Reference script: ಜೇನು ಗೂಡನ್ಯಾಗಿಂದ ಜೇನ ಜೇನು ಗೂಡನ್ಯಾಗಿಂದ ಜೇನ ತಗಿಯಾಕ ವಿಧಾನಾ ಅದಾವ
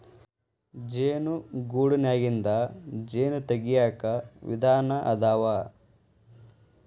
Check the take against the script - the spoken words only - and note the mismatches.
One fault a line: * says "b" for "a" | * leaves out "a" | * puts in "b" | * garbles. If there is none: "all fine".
* leaves out "ಜೇನು ಗೂಡನ್ಯಾಗಿಂದ ಜೇನ"